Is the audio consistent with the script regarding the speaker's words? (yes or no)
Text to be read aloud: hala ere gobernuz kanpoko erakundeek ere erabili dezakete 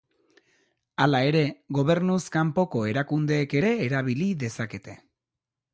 yes